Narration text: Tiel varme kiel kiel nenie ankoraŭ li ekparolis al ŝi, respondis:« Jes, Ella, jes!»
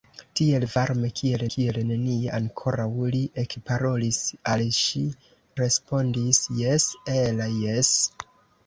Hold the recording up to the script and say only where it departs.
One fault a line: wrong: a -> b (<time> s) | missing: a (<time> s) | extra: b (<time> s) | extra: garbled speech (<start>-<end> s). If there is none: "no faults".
no faults